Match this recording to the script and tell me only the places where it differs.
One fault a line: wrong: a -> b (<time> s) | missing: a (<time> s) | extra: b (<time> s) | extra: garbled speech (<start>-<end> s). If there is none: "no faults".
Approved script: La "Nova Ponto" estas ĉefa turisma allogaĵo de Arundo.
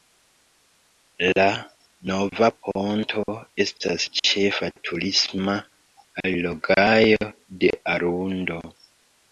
no faults